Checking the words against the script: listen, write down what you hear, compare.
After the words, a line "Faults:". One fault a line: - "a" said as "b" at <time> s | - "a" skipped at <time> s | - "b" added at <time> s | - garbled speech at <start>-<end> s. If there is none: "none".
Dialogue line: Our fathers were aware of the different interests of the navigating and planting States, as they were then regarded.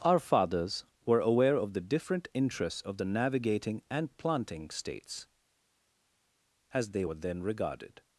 Our fathers were aware of the different interests of the navigating and planting States, as they were then regarded.
Faults:
none